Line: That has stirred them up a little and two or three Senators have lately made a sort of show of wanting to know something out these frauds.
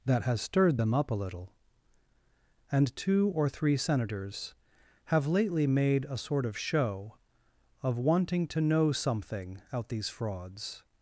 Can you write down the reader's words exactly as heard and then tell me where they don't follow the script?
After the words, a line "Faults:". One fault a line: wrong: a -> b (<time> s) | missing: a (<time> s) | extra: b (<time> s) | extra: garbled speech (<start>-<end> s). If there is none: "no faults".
That has stirred them up a little and two or three Senators have lately made a sort of show of wanting to know something out these frauds.
Faults:
no faults